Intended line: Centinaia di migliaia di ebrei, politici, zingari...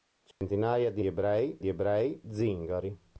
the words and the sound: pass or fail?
fail